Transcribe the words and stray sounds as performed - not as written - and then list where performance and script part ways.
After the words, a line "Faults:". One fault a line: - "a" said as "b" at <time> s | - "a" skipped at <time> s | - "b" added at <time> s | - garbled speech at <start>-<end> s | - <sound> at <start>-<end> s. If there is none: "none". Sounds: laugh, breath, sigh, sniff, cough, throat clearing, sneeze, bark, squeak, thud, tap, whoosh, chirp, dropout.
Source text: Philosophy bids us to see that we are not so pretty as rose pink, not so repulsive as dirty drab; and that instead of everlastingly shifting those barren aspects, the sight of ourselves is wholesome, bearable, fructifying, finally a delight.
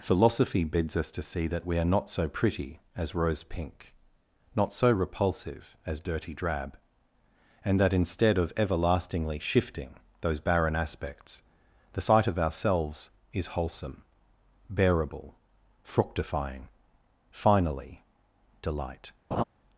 Philosophy bids us to see that we are not so pretty as rose pink, not so repulsive as dirty drab; and that instead of everlastingly shifting those barren aspects, the sight of ourselves is wholesome, bearable, fructifying, finally delight.
Faults:
- "a" skipped at 18.0 s
- laugh at 19.3-19.4 s